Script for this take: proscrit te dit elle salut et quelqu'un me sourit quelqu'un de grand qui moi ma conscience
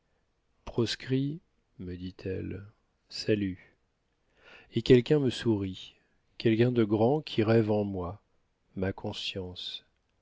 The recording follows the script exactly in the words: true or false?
false